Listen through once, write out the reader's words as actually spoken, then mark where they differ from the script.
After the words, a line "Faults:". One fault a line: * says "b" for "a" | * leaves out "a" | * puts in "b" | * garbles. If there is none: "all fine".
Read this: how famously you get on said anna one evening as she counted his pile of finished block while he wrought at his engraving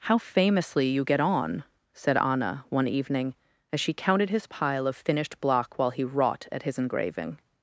how famously you get on said anna one evening as she counted his pile of finished block while he wrought at his engraving
Faults:
all fine